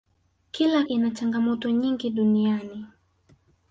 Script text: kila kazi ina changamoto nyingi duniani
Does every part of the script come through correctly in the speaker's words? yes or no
no